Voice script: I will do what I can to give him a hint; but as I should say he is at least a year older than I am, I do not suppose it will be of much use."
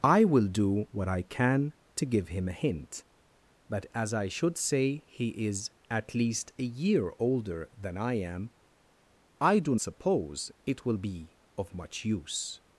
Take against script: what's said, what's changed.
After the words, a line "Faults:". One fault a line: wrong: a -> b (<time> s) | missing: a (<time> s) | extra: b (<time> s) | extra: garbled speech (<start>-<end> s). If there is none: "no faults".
I will do what I can to give him a hint; but as I should say he is at least a year older than I am, I do suppose it will be of much use."
Faults:
missing: not (9.8 s)